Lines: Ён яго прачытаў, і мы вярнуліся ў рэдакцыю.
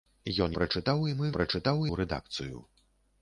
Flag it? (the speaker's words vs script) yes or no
yes